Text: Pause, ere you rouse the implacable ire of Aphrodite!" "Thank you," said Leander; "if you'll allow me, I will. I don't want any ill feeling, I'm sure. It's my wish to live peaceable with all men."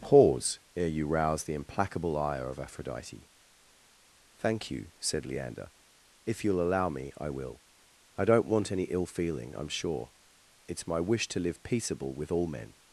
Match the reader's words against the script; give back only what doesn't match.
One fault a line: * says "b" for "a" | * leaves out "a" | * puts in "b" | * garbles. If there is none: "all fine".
all fine